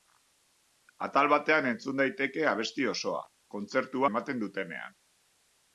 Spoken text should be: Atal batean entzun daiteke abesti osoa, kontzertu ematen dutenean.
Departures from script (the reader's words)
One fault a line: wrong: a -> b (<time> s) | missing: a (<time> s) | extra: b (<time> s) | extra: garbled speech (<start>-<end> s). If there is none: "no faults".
no faults